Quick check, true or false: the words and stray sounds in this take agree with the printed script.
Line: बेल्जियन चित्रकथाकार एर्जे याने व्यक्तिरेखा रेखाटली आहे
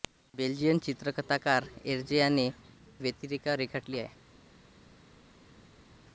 true